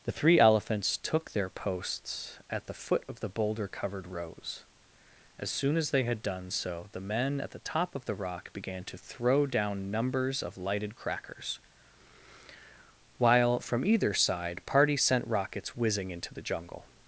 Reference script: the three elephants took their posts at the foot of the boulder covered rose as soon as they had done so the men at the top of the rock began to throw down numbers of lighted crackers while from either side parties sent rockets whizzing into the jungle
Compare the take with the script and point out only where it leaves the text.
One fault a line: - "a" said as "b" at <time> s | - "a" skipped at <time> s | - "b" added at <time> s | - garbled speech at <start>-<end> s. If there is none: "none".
none